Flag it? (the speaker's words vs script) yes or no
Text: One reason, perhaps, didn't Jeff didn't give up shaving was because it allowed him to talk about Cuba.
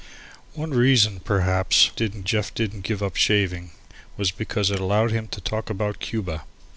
no